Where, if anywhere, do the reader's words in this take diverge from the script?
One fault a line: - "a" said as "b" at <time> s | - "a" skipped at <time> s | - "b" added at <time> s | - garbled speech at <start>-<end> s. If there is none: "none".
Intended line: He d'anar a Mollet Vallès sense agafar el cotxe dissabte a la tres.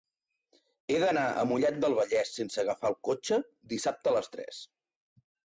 - "del" added at 1.8 s
- "la" said as "les" at 4.2 s